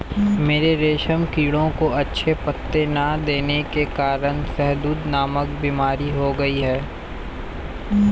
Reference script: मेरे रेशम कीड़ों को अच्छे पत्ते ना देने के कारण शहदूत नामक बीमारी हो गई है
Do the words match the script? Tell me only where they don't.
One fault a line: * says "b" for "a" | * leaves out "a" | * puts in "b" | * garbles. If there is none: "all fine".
all fine